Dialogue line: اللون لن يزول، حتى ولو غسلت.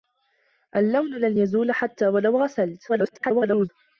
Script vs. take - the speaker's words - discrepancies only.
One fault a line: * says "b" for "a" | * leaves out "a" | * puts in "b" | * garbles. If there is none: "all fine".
* garbles